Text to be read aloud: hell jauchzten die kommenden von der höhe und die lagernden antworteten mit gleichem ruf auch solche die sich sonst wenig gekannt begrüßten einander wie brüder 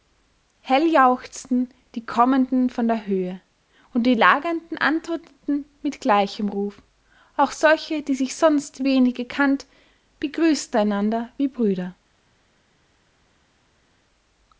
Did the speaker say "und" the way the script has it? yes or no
yes